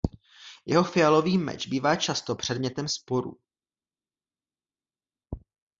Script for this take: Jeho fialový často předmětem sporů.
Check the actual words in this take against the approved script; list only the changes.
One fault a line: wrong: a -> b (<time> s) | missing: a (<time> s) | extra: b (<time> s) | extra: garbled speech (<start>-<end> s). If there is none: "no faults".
extra: meč bývá (1.4 s)